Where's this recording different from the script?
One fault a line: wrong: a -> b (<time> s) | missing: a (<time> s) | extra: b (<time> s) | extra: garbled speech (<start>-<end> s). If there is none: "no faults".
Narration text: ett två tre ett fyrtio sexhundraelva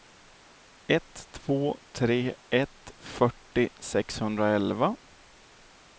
no faults